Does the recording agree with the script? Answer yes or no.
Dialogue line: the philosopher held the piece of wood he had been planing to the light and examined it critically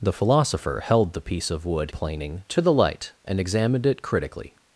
no